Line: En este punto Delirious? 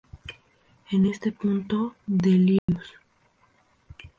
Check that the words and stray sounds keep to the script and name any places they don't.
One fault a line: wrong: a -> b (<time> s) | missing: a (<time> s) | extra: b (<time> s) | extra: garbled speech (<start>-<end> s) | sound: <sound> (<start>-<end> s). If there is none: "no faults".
sound: dropout (2.6-2.7 s)